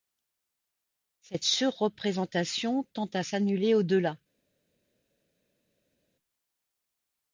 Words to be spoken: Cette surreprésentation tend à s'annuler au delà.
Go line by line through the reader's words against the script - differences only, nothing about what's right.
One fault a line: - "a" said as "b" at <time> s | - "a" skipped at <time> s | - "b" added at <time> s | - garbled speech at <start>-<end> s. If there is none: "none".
none